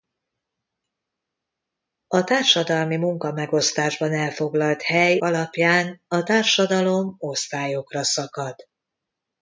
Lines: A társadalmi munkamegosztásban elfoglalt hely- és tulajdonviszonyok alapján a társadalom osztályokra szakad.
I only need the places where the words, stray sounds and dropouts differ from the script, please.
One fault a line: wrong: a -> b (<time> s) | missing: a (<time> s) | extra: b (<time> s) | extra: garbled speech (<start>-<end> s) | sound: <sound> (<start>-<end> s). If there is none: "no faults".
missing: és tulajdonviszonyok (5.2 s)